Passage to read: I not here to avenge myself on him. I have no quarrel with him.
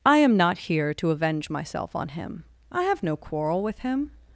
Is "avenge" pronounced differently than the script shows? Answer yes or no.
no